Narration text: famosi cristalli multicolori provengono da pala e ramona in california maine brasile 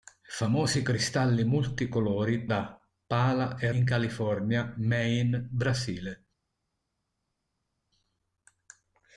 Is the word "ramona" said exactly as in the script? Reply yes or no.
no